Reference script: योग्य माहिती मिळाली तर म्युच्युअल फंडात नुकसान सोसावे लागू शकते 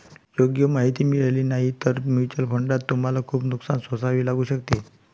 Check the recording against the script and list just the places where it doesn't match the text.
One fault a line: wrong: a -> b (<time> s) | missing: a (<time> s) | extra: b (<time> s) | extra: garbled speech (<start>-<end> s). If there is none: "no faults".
extra: नाही (1.4 s)
extra: तुम्हाला खूप (2.9 s)